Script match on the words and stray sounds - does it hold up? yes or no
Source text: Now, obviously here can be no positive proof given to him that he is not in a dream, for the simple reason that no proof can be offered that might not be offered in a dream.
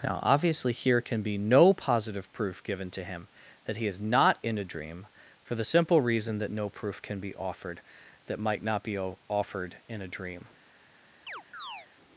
no